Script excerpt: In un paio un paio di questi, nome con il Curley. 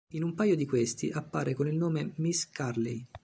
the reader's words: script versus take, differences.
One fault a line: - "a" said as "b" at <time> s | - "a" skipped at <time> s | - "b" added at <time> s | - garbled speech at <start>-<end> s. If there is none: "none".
- "un paio" skipped at 0.6 s
- "nome" said as "appare" at 1.1 s
- "nome Miss" added at 1.8 s